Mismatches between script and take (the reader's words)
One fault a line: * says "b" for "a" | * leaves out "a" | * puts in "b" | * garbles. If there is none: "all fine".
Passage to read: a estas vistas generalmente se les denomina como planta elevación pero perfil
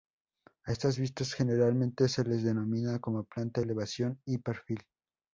* says "y" for "pero"